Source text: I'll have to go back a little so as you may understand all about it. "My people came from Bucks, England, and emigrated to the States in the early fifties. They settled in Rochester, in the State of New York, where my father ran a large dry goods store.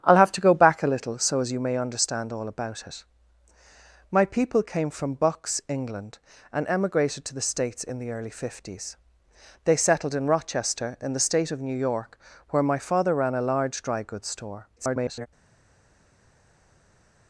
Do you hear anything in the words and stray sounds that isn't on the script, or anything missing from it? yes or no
yes